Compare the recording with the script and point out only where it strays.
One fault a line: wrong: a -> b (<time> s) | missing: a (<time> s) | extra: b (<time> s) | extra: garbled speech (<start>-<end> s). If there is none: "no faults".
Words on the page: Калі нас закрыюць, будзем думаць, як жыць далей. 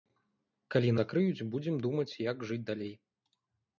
missing: нас (0.9 s)